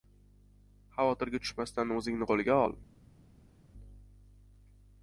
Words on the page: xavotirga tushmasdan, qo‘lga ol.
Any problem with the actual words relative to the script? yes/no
yes